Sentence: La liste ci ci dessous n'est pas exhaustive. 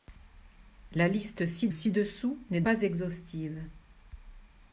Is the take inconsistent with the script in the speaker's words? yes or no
no